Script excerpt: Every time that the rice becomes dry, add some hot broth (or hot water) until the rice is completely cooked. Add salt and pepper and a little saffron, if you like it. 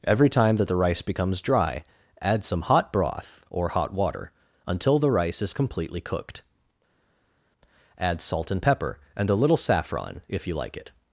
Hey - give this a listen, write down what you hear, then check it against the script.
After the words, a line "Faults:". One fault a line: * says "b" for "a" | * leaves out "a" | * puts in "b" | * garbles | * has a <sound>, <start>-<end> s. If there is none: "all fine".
Every time that the rice becomes dry, add some hot broth (or hot water) until the rice is completely cooked. Add salt and pepper and a little saffron, if you like it.
Faults:
all fine